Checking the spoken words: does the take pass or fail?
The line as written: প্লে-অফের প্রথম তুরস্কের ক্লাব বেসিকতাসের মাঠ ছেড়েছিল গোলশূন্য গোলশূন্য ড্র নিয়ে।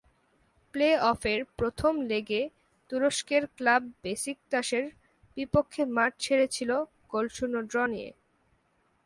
fail